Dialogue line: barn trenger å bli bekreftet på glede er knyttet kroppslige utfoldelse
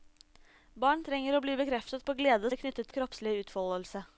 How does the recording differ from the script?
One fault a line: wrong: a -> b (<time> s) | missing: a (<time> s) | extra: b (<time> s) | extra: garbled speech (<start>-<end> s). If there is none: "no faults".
no faults